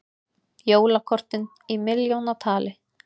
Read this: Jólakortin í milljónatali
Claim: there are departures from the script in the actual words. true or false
false